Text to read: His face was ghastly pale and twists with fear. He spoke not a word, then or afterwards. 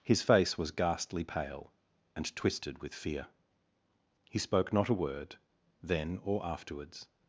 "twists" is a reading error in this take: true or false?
true